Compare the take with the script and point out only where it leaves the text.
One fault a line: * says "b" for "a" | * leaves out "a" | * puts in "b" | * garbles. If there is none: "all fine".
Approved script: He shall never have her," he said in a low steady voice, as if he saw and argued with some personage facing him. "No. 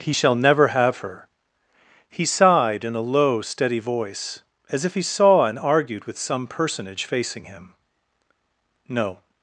* says "sighed" for "said"